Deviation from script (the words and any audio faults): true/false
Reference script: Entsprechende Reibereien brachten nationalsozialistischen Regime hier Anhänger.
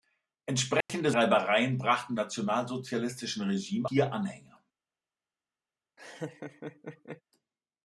true